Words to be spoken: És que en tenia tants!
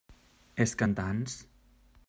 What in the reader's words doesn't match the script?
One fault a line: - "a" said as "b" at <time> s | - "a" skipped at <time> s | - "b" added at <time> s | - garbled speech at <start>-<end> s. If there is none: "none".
- "tenia" skipped at 0.9 s